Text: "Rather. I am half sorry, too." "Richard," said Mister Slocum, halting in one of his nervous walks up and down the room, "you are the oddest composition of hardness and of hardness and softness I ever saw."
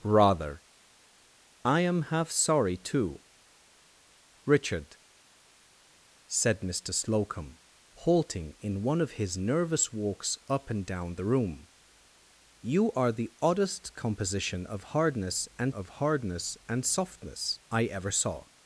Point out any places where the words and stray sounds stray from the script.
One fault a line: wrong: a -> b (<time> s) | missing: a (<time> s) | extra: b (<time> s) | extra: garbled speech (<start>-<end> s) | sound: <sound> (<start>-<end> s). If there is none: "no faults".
no faults